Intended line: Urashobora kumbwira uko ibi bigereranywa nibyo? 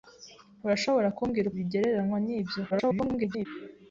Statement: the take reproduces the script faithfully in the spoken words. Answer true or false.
false